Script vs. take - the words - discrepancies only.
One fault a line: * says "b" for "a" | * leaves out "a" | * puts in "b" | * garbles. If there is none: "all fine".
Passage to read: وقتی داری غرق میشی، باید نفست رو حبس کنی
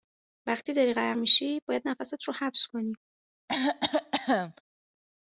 all fine